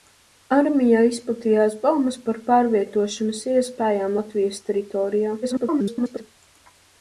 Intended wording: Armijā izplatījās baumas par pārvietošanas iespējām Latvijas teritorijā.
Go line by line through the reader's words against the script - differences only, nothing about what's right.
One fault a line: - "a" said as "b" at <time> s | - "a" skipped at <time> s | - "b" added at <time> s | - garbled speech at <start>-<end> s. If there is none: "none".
- garbled speech at 5.4-6.2 s